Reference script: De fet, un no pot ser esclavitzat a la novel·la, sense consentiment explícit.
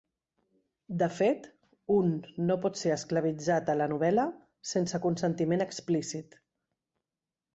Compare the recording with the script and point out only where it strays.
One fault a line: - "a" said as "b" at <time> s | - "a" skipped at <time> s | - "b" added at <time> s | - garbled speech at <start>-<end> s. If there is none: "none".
none